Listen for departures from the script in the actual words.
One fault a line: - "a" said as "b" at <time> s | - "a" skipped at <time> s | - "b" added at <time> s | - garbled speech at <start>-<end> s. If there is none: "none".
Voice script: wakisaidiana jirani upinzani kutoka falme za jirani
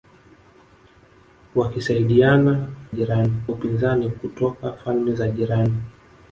none